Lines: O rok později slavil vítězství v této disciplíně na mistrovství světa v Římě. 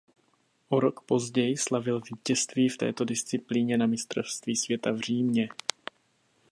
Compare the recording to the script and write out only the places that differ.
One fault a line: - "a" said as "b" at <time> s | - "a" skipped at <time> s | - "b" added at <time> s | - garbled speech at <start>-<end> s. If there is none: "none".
none